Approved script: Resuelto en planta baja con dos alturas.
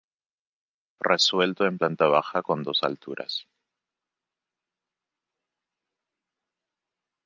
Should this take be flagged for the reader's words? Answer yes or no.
no